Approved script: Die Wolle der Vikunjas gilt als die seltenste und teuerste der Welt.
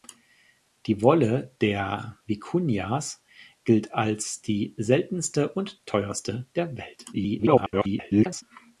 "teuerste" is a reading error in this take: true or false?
false